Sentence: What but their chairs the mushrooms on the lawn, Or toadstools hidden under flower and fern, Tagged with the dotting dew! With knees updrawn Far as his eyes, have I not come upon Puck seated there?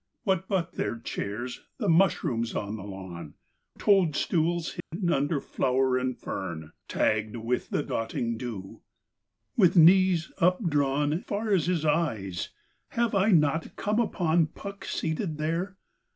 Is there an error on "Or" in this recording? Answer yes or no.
yes